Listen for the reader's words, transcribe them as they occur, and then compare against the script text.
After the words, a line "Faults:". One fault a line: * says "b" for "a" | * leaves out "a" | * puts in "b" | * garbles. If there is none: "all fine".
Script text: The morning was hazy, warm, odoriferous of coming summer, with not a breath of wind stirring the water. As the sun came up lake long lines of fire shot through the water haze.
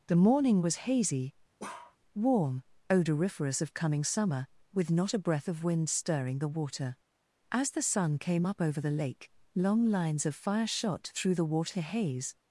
The morning was hazy, warm, odoriferous of coming summer, with not a breath of wind stirring the water. As the sun came up over the lake long lines of fire shot through the water haze.
Faults:
* puts in "over the"